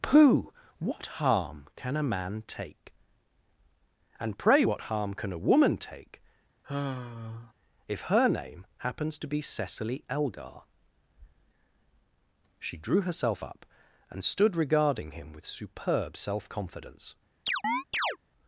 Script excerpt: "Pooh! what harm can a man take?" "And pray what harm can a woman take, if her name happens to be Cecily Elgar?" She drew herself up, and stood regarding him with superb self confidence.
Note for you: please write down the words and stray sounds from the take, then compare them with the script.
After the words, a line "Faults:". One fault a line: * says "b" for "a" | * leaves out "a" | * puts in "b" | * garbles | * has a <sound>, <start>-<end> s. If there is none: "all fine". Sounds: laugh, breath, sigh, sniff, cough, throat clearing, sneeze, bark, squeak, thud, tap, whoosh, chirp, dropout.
"Pooh! what harm can a man take?" "And pray what harm can a woman take, if her name happens to be Cecily Elgar?" She drew herself up, and stood regarding him with superb self confidence.
Faults:
* has a sigh, 6.6-7.5 s
* has a chirp, 17.5-18.2 s